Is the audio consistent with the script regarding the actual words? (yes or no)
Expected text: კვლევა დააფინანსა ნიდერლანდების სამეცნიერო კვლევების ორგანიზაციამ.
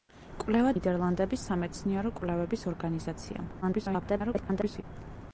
no